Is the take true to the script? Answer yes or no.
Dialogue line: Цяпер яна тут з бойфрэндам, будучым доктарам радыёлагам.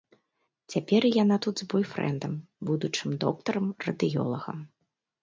yes